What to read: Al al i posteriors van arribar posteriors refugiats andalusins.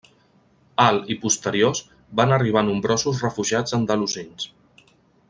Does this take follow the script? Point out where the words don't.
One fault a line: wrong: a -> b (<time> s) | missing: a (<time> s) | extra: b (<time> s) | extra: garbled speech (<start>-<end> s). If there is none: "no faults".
missing: al (1.0 s)
wrong: posteriors -> nombrosos (2.7 s)